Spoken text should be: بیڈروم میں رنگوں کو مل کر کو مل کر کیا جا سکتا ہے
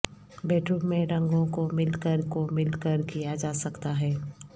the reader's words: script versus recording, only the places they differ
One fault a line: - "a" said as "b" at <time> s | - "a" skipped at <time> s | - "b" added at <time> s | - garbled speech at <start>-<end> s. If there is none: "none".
none